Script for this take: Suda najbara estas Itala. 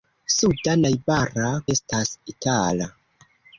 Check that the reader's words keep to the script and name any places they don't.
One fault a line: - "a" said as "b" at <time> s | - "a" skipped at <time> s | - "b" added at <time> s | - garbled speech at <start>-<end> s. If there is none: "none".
none